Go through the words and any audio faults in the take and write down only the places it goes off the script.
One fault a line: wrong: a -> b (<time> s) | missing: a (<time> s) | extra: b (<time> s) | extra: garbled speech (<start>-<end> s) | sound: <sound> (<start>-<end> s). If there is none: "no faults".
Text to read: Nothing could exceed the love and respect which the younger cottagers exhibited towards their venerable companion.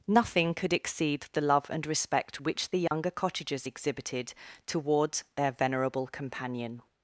sound: dropout (2.9-2.9 s)